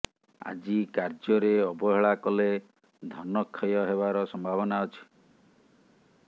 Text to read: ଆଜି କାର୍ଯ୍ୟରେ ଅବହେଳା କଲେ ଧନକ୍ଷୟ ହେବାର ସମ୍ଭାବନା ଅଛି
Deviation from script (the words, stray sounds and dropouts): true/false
false